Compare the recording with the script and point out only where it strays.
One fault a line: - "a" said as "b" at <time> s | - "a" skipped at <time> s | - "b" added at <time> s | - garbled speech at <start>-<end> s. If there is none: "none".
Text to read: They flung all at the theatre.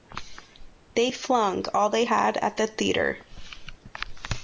- "they had" added at 1.9 s